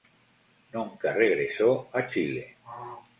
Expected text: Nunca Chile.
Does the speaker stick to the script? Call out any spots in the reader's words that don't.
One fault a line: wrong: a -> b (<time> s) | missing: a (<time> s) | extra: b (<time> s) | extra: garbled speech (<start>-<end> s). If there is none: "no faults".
extra: regresó a (1.1 s)